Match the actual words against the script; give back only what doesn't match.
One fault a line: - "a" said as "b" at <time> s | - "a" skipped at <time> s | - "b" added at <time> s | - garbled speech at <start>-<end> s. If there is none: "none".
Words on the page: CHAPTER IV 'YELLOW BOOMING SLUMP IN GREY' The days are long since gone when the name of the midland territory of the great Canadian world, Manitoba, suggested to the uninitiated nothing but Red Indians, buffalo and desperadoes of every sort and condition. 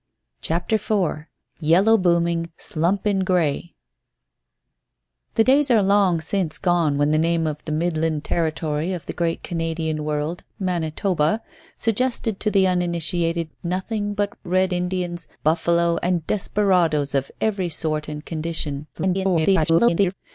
- garbled speech at 18.9-20.1 s